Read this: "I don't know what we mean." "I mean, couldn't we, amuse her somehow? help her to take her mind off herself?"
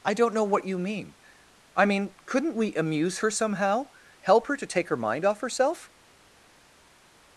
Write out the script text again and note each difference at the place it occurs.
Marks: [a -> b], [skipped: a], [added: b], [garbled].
"I don't know what [we -> you] mean." "I mean, couldn't we, amuse her somehow? help her to take her mind off herself?"